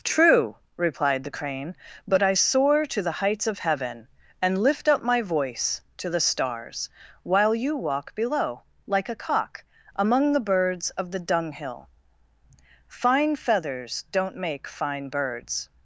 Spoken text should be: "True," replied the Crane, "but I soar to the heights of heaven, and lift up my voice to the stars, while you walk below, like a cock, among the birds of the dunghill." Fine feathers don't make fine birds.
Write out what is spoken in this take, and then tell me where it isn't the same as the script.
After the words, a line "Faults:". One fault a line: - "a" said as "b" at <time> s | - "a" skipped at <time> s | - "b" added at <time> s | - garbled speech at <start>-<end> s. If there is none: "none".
"True," replied the Crane, "but I soar to the heights of heaven, and lift up my voice to the stars, while you walk below, like a cock, among the birds of the dunghill." Fine feathers don't make fine birds.
Faults:
none